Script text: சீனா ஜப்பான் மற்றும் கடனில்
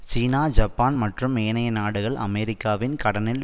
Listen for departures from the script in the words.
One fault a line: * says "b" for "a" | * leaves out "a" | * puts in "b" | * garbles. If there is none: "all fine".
* puts in "ஏனைய நாடுகள் அமெரிக்காவின்"